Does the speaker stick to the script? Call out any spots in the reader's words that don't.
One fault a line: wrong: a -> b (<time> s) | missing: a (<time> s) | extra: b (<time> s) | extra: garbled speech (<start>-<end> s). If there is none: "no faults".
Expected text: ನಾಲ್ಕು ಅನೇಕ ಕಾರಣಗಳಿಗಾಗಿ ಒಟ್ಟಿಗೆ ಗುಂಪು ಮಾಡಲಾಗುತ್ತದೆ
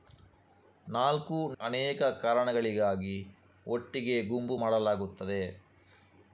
no faults